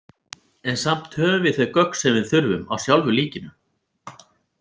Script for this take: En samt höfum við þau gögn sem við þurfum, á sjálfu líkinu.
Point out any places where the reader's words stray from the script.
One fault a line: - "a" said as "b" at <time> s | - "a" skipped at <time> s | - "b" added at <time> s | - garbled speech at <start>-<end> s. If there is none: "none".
none